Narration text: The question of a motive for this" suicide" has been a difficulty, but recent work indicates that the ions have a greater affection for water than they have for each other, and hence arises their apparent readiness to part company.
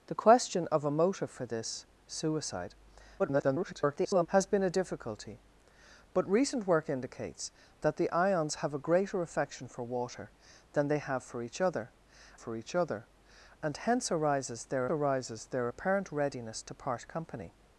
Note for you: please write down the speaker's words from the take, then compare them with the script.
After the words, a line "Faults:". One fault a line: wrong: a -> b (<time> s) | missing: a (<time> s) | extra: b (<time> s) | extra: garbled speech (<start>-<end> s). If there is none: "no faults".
The question of a motive for this" suicide" [garbled] has been a difficulty, but recent work indicates that the ions have a greater affection for water than they have for each other for each other, and hence arises their arises their apparent readiness to part company.
Faults:
extra: garbled speech (3.2-4.3 s)
extra: for each other (12.3 s)
extra: arises their (14.9 s)